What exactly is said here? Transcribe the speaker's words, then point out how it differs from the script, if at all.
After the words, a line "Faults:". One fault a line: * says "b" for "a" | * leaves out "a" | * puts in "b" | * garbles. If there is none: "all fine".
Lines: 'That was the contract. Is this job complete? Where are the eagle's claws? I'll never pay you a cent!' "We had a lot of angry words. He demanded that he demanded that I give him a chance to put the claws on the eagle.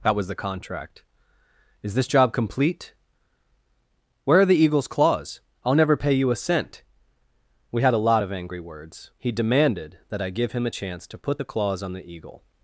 'That was the contract. Is this job complete? Where are the eagle's claws? I'll never pay you a cent!' "We had a lot of angry words. He demanded that I give him a chance to put the claws on the eagle.
Faults:
* leaves out "he demanded that"